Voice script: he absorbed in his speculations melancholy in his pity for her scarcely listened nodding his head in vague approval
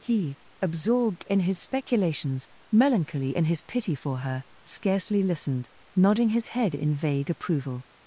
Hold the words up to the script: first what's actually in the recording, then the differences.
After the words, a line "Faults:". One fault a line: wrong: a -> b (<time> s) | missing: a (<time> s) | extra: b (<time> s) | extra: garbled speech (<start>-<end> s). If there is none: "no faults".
he absorbed in his speculations melancholy in his pity for her scarcely listened nodding his head in vague approval
Faults:
no faults